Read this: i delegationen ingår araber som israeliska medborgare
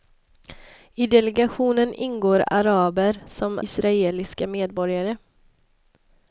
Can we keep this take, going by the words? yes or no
yes